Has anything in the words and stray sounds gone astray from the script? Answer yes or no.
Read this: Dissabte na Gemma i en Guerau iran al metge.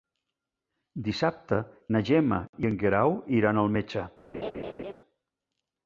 yes